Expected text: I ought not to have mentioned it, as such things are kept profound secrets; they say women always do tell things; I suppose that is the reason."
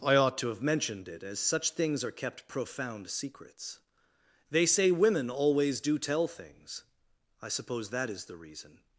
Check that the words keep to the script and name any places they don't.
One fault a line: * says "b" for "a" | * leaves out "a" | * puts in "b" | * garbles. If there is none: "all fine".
* leaves out "not"